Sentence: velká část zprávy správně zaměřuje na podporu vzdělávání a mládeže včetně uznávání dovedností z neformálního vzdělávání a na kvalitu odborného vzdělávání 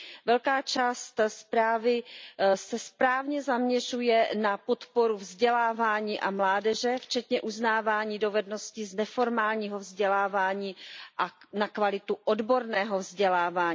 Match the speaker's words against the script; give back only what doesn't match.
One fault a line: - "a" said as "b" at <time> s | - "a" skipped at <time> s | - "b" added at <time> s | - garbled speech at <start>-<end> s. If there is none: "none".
- "se" added at 2.5 s